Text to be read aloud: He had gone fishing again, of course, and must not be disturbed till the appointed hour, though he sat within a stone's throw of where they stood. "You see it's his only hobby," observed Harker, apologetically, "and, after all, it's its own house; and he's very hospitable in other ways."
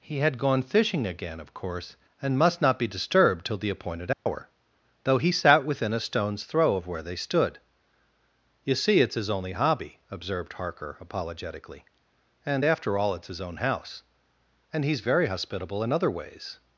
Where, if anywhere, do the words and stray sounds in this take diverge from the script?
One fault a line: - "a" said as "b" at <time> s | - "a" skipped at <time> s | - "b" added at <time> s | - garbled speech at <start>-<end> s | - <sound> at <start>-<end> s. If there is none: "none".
- dropout at 4.1-4.3 s
- "its" said as "his" at 13.3 s